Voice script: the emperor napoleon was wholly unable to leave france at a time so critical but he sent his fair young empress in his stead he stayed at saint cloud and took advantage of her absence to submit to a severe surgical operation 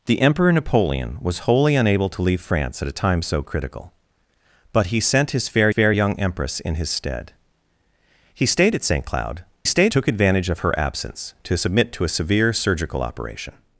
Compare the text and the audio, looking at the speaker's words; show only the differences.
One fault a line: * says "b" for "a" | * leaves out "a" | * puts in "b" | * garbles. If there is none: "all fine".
* puts in "fair"
* says "stayed" for "and"